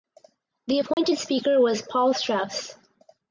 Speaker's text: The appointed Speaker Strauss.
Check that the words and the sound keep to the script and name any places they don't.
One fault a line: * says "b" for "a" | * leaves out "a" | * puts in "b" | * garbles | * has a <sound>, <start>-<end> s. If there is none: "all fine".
* has a dropout, 0.9-1.0 s
* puts in "was Paul"